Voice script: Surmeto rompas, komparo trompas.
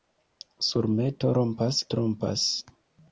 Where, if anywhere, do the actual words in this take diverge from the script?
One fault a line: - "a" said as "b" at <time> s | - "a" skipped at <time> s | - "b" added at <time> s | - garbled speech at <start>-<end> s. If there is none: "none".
- "komparo" skipped at 1.8 s